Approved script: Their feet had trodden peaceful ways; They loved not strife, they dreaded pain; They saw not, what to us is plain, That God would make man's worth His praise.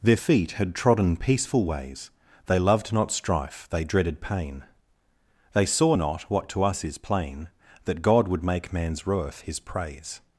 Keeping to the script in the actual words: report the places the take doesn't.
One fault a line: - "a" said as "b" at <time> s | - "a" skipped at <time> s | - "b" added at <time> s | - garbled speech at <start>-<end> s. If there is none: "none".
none